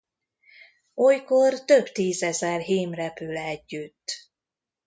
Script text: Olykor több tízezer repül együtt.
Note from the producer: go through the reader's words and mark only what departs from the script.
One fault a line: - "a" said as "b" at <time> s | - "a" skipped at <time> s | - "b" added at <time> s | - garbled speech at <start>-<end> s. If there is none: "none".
- "hím" added at 2.6 s